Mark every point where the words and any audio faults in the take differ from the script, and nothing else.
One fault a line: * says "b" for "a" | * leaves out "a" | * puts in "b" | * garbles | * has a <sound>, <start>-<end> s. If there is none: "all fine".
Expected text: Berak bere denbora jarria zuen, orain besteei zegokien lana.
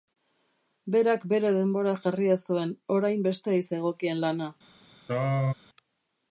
* has a throat clearing, 5.1-5.5 s